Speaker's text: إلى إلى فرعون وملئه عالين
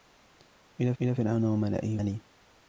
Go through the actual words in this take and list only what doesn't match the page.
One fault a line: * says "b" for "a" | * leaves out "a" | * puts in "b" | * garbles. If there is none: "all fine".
all fine